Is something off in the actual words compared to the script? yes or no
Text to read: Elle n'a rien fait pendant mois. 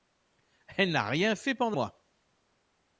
no